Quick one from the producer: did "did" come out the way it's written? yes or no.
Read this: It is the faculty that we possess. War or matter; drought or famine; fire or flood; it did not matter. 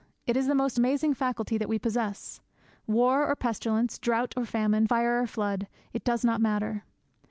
no